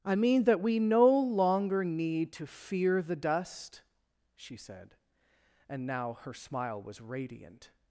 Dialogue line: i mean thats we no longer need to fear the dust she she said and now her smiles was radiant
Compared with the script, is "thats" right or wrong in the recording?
wrong